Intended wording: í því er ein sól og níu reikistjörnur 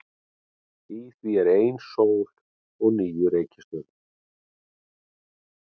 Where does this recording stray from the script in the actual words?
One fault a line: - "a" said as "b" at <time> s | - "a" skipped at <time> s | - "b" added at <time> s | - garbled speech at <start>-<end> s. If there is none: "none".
none